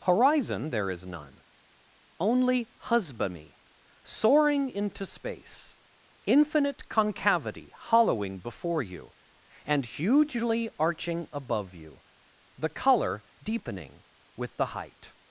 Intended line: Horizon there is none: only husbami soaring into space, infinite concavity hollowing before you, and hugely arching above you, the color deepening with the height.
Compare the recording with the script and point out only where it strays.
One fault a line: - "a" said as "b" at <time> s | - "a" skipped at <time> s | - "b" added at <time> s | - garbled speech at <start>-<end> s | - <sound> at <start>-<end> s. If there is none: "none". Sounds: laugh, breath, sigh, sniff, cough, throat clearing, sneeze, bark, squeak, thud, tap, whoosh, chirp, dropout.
none